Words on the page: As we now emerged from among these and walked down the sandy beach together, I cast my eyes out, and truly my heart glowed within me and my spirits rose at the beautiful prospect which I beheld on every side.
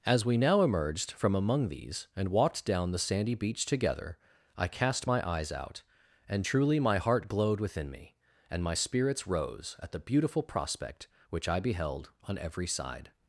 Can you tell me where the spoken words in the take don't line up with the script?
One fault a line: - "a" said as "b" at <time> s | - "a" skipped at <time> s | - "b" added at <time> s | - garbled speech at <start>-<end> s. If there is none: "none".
none